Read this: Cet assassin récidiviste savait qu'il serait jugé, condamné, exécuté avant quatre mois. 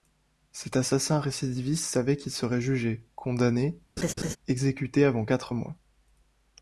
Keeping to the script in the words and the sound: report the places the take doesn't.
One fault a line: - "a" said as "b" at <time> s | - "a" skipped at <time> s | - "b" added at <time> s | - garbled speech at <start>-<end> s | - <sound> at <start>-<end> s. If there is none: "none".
- laugh at 4.0-4.4 s